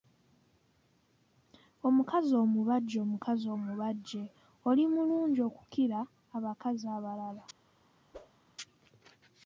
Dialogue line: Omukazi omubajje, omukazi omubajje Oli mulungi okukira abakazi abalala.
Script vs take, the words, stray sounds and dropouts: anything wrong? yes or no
yes